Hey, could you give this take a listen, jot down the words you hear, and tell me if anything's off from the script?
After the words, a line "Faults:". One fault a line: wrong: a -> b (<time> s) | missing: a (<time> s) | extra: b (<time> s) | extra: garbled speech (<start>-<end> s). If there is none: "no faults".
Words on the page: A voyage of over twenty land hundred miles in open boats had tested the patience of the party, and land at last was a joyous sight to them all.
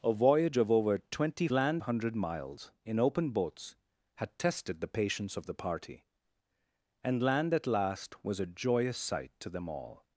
A voyage of over twenty land hundred miles in open boats had tested the patience of the party, and land at last was a joyous sight to them all.
Faults:
no faults